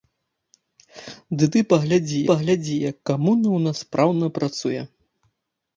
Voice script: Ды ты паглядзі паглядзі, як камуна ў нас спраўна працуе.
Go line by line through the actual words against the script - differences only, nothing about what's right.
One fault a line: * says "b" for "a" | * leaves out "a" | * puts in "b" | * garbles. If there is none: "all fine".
all fine